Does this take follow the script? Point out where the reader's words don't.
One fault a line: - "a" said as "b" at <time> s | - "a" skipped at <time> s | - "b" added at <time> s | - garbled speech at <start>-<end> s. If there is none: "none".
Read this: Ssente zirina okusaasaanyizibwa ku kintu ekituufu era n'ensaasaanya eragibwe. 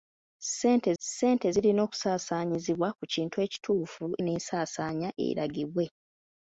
- "ssente" added at 1.0 s
- "era" skipped at 4.0 s